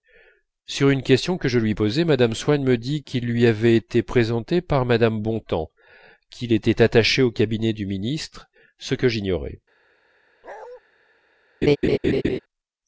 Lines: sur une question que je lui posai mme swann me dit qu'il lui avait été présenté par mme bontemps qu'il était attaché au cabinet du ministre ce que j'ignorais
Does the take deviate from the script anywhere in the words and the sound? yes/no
yes